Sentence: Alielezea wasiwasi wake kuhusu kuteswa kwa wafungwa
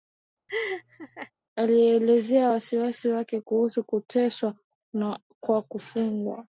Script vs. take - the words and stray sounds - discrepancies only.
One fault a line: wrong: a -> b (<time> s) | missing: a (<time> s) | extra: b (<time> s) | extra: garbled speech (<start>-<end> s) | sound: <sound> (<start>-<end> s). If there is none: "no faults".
sound: laugh (0.5-1.3 s)